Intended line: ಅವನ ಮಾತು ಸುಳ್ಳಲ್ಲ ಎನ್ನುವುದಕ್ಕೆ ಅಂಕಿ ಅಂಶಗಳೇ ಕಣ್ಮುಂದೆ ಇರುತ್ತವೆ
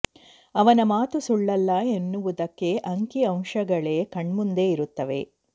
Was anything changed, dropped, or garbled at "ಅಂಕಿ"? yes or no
no